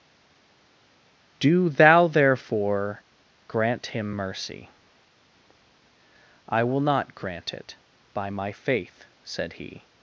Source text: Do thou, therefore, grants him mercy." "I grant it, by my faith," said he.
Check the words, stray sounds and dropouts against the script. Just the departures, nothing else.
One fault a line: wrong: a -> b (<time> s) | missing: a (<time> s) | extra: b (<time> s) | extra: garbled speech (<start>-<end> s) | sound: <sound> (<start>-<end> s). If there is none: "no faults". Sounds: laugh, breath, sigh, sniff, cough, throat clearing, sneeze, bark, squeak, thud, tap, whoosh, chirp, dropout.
wrong: grants -> grant (3.5 s)
extra: will not (6.6 s)